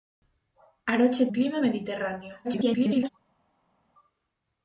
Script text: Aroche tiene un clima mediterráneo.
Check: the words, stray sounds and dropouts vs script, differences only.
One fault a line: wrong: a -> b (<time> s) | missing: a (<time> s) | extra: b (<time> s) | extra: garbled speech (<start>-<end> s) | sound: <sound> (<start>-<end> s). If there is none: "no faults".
missing: tiene (1.3 s)
extra: garbled speech (2.4-3.1 s)